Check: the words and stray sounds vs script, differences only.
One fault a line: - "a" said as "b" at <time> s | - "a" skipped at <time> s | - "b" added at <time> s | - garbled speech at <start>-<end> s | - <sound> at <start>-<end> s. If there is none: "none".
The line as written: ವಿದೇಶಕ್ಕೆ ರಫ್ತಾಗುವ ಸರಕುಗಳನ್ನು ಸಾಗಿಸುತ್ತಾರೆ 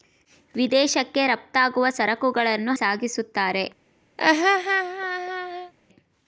- laugh at 4.2-5.7 s